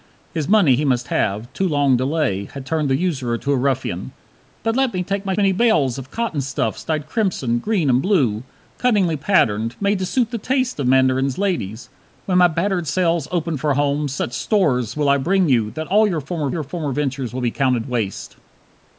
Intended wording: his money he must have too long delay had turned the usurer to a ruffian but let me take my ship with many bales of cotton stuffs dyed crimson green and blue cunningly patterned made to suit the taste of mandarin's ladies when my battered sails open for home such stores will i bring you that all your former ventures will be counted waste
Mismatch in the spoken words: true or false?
true